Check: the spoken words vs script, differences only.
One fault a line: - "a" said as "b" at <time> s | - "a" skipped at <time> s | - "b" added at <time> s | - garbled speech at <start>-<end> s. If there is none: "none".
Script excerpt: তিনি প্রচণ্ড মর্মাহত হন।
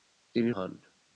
- "প্রচণ্ড মর্মাহত" skipped at 0.5 s